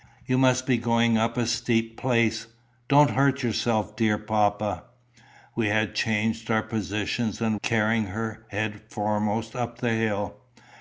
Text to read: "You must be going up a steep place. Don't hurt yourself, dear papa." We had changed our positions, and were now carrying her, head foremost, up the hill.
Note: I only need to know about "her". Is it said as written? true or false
true